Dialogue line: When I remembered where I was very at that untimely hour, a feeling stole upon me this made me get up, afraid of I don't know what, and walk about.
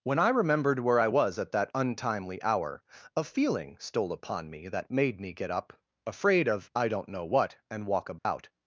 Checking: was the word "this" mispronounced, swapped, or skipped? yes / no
yes